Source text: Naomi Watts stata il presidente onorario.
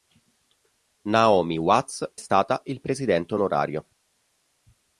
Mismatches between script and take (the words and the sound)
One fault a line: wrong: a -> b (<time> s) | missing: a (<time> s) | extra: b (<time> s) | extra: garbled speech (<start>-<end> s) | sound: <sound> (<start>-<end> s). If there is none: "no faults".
no faults